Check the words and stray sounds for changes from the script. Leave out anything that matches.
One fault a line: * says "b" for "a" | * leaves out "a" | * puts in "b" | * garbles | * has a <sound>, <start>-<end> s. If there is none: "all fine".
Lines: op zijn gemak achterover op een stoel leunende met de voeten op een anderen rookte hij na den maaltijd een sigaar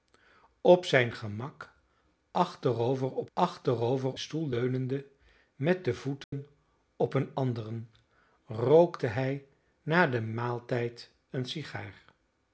* says "achterover" for "een"
* has a dropout, 6.2-6.3 s